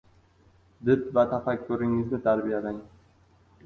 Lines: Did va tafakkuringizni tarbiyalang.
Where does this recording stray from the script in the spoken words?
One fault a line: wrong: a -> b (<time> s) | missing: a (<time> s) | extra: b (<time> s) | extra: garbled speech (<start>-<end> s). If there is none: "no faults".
no faults